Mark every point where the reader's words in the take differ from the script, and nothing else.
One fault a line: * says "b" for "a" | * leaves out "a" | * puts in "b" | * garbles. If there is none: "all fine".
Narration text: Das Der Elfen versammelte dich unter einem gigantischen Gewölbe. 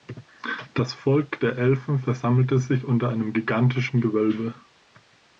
* puts in "Volk"
* says "sich" for "dich"